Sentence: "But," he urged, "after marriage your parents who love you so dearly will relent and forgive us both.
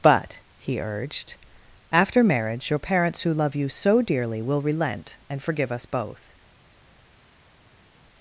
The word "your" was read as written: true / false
true